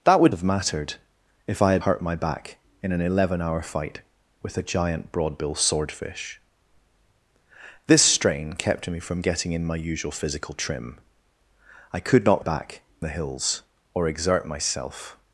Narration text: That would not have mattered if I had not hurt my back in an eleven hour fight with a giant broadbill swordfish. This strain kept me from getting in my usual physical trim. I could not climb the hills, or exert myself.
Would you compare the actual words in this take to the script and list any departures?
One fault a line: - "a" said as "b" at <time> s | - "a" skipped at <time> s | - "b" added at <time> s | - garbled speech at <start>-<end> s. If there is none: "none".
- "not" skipped at 0.3 s
- "not" skipped at 1.8 s
- "climb" said as "back" at 12.4 s